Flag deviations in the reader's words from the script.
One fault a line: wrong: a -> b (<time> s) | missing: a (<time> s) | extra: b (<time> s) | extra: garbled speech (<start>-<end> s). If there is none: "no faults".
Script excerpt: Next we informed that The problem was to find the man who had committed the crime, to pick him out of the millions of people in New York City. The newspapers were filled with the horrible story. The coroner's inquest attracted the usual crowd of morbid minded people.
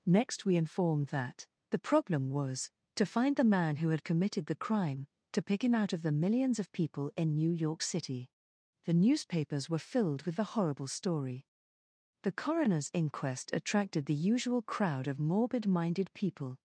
no faults